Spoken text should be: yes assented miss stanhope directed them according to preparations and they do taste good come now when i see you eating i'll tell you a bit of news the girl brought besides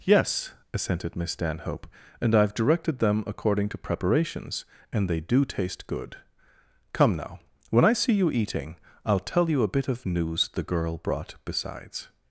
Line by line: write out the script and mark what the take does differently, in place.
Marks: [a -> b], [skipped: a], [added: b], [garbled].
yes assented miss stanhope [added: and i've] directed them according to preparations and they do taste good come now when i see you eating i'll tell you a bit of news the girl brought besides